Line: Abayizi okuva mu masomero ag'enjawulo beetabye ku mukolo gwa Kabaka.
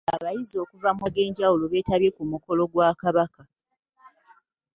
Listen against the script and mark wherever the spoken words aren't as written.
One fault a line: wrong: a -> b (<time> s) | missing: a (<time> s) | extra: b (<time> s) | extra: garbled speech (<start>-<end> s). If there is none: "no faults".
missing: masomero (1.1 s)